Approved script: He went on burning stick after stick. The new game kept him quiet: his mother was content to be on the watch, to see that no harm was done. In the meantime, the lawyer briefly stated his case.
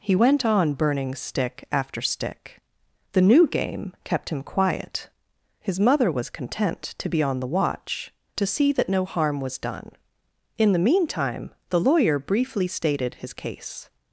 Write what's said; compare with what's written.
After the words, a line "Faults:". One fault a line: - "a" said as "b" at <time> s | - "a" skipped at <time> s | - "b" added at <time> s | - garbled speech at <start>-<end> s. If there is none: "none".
He went on burning stick after stick. The new game kept him quiet: his mother was content to be on the watch, to see that no harm was done. In the meantime, the lawyer briefly stated his case.
Faults:
none